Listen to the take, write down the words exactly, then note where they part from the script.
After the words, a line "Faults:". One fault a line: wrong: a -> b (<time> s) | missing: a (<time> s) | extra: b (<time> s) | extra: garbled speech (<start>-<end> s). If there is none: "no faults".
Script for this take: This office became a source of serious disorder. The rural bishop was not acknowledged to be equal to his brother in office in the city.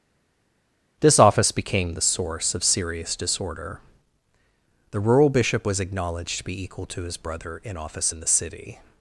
This office became the source of serious disorder. The rural bishop was acknowledged to be equal to his brother in office in the city.
Faults:
wrong: a -> the (1.9 s)
missing: not (5.8 s)